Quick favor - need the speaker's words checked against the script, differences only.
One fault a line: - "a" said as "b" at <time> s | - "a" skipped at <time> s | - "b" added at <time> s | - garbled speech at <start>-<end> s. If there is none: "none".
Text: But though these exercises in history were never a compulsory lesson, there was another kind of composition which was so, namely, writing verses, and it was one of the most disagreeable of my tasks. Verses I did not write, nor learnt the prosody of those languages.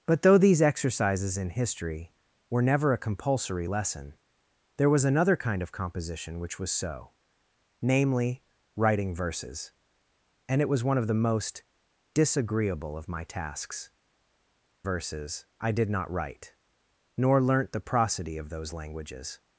none